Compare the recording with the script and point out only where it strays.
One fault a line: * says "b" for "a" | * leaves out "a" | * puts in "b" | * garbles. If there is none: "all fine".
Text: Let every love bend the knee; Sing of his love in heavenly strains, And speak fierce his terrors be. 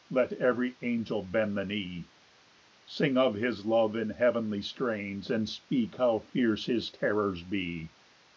* says "angel" for "love"
* puts in "how"